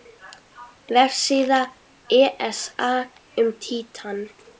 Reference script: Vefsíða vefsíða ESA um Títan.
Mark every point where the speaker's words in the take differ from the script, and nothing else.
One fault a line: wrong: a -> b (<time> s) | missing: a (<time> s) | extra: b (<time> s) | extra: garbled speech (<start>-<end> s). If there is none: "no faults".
missing: vefsíða (1.6 s)